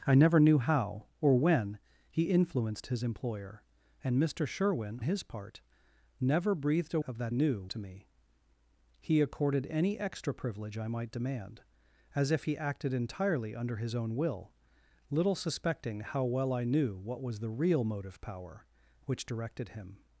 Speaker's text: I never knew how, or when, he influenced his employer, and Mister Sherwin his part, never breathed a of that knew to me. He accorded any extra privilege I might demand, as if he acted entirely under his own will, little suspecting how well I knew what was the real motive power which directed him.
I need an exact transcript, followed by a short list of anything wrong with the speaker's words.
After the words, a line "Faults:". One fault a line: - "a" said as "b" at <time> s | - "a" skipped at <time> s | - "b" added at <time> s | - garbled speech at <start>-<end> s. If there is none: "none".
I never knew how, or when, he influenced his employer, and Mister Sherwin his part, never breathed a of that knew to me. He accorded any extra privilege I might demand, as if he acted entirely under his own will, little suspecting how well I knew what was the real motive power which directed him.
Faults:
none